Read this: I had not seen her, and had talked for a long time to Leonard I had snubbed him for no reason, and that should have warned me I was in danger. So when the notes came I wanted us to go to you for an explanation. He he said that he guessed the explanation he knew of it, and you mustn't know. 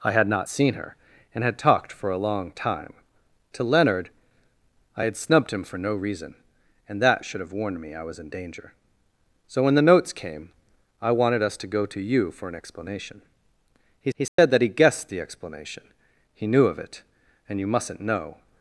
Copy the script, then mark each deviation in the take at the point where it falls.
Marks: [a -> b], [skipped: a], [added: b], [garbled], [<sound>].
I had not seen her, and had talked for a long time to Leonard I had snubbed him for no reason, and that should have warned me I was in danger. So when the notes came I wanted us to go to you for an explanation. He he said [dropout] that he guessed the explanation he knew of it, and you mustn't know.